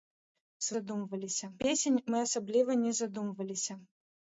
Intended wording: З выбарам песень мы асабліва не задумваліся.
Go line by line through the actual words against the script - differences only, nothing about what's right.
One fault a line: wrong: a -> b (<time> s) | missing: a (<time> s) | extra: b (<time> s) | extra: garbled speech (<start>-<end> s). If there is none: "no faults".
wrong: выбарам -> задумваліся (0.8 s)